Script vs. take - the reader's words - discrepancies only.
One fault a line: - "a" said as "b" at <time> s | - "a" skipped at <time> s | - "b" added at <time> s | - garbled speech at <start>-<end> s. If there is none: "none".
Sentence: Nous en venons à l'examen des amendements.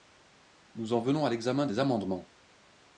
none